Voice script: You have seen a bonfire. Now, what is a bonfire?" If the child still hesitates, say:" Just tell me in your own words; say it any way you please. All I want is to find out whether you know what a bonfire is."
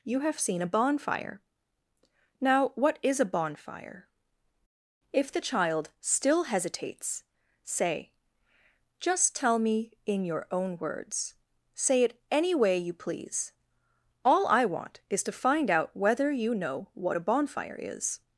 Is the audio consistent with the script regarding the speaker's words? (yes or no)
yes